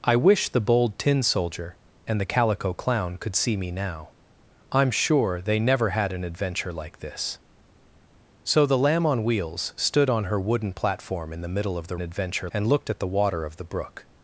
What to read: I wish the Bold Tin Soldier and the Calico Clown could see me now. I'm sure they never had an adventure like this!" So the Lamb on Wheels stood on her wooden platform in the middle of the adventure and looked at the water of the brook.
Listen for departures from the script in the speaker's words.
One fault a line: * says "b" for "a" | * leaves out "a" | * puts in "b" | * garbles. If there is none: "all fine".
all fine